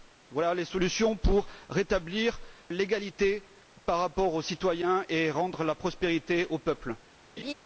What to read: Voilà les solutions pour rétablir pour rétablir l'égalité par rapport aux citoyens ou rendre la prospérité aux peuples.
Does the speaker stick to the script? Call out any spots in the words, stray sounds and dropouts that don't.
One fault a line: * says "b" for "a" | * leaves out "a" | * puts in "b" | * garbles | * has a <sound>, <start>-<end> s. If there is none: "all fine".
* leaves out "pour rétablir"
* says "et" for "ou"
* has a laugh, 7.4-7.5 s